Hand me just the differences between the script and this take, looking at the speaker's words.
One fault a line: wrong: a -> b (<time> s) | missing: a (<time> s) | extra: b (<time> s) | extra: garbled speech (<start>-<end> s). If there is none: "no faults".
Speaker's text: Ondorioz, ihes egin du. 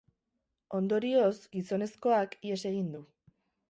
extra: gizonezkoak (1.6 s)